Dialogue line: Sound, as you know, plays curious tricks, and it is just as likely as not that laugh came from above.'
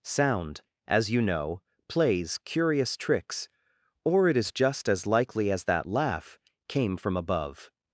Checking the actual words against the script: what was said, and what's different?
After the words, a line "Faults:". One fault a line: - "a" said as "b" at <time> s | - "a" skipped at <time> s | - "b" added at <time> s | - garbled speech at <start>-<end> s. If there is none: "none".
Sound, as you know, plays curious tricks, or it is just as likely as that laugh came from above.'
Faults:
- "and" said as "or" at 4.0 s
- "not" skipped at 5.7 s